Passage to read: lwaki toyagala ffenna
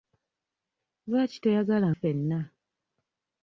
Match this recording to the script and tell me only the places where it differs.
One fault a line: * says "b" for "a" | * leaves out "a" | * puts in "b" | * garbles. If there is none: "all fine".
all fine